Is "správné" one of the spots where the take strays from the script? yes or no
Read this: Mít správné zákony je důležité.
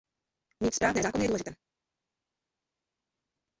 no